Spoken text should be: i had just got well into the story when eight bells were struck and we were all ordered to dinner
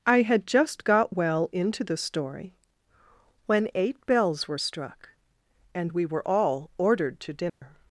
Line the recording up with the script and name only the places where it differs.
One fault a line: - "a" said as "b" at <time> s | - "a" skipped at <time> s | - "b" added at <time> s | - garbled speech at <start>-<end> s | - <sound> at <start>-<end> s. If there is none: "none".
- dropout at 7.5-7.6 s